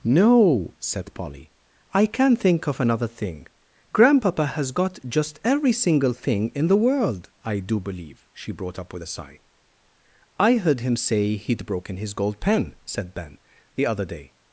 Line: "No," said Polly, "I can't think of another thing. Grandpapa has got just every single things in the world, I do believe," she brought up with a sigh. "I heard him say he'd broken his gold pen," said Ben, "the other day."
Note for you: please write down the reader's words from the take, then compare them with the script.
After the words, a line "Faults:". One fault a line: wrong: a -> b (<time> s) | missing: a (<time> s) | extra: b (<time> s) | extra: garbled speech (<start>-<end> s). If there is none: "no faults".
"No," said Polly, "I can't think of another thing. Grandpapa has got just every single thing in the world, I do believe," she brought up with a sigh. "I heard him say he'd broken his gold pen," said Ben, "the other day."
Faults:
wrong: things -> thing (6.1 s)